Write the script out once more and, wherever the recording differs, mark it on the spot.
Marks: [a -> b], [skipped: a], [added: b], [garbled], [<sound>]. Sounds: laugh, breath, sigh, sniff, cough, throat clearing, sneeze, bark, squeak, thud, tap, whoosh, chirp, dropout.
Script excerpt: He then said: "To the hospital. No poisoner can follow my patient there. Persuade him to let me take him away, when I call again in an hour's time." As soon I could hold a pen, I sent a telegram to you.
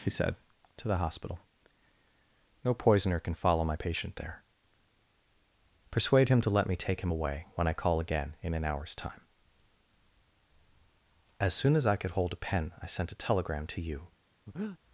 He [skipped: then] said: "To the hospital. No poisoner can follow my patient there. Persuade him to let me take him away, when I call again in an hour's time." As soon [added: as] I could hold a pen, I sent a telegram to you. [breath]